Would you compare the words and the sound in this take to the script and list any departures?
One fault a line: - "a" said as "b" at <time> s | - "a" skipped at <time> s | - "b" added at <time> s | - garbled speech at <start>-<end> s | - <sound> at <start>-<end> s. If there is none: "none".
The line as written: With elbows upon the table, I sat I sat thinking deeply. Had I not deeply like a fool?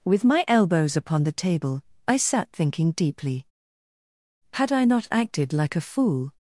- "my" added at 0.2 s
- "I sat" skipped at 2.5 s
- "deeply" said as "acted" at 5.1 s